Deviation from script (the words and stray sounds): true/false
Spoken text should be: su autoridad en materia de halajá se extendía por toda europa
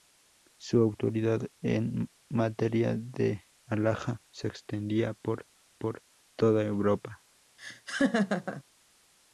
true